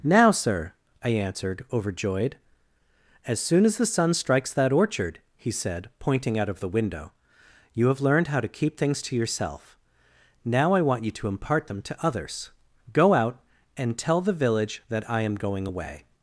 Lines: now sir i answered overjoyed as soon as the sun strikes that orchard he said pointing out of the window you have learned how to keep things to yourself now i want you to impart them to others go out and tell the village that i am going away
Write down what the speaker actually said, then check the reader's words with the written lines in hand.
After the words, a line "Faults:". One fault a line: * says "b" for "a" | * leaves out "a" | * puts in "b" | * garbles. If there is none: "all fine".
now sir i answered overjoyed as soon as the sun strikes that orchard he said pointing out of the window you have learned how to keep things to yourself now i want you to impart them to others go out and tell the village that i am going away
Faults:
all fine